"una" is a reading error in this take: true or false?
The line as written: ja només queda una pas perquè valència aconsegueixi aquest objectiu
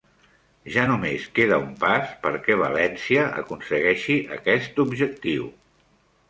true